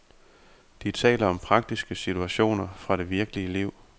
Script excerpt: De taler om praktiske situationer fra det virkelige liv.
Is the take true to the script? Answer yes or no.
yes